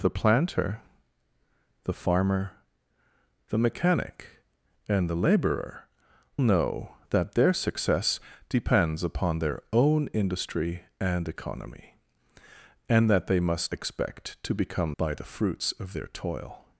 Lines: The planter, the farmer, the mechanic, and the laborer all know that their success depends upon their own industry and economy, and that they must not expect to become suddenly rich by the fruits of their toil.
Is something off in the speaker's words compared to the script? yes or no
yes